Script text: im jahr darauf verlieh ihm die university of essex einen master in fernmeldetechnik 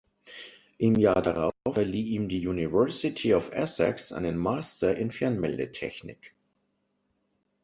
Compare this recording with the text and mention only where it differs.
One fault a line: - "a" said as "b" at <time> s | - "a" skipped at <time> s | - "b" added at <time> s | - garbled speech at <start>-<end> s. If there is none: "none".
none